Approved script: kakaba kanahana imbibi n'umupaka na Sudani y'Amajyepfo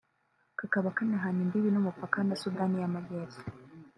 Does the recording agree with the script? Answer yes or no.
yes